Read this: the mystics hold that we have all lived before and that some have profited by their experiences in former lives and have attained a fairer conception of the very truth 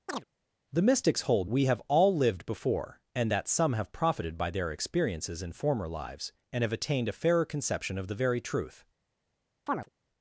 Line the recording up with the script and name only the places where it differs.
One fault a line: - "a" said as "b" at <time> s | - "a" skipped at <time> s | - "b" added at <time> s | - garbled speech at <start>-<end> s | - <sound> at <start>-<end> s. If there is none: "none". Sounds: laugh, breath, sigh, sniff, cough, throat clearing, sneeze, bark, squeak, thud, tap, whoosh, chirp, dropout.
- chirp at 0.1-0.2 s
- "that" skipped at 1.5 s
- chirp at 9.7-9.9 s